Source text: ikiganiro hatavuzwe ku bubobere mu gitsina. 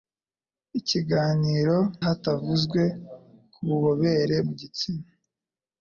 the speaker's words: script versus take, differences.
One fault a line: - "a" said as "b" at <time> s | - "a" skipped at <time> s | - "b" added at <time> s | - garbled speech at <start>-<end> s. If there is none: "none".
none